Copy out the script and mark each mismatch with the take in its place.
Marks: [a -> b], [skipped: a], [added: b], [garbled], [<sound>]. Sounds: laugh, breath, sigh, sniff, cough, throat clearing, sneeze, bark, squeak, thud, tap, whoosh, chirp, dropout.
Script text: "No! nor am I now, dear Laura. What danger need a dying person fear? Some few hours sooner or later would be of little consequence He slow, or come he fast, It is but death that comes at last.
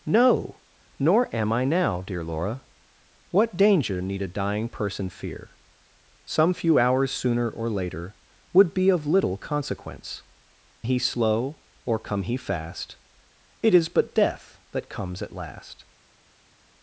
"No! nor am I now, dear Laura. What danger need a dying person fear? Some few hours sooner or later would be of little consequence He slow, or come he fast, It is but death that comes at last.